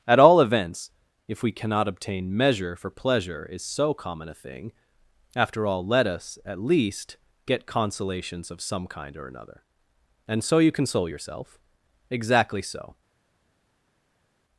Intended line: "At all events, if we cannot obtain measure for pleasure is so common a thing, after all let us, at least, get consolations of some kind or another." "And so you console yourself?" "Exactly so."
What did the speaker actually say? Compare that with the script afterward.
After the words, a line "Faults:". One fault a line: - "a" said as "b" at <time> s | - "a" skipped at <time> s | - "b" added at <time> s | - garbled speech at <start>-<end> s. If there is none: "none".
"At all events, if we cannot obtain measure for pleasure is so common a thing, after all let us, at least, get consolations of some kind or another." "And so you console yourself?" "Exactly so."
Faults:
none